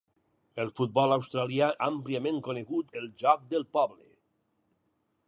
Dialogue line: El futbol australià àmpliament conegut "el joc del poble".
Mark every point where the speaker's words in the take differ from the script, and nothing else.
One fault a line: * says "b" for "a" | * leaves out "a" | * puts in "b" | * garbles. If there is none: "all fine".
all fine